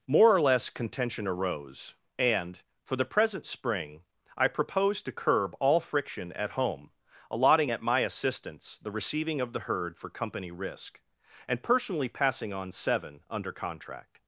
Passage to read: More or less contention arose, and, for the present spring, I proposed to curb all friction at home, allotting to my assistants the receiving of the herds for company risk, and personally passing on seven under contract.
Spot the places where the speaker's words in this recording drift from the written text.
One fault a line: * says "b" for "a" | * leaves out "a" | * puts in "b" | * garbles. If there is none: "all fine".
* says "at" for "to"
* says "herd" for "herds"